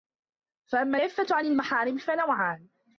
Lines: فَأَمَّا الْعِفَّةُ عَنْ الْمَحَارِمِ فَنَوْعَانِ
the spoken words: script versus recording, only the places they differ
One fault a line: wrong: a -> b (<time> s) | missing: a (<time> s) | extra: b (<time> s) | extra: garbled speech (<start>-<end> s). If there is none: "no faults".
no faults